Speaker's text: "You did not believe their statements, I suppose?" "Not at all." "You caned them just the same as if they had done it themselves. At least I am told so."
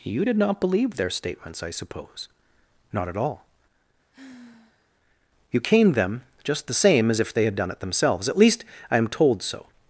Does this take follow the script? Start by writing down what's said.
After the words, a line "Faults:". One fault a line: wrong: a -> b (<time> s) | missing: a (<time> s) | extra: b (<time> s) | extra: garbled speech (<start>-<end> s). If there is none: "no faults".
"You did not believe their statements, I suppose?" "Not at all." "You caned them just the same as if they had done it themselves. At least I am told so."
Faults:
no faults